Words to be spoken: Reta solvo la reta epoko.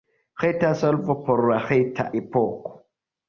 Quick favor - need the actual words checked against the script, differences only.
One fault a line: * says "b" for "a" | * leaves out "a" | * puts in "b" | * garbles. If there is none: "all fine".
* puts in "por"